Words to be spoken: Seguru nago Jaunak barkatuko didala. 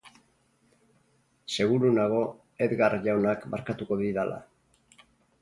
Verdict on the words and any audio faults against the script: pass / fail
fail